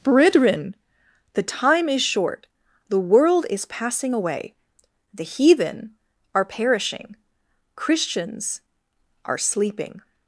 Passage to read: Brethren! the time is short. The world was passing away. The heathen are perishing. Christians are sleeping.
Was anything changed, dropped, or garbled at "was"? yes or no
yes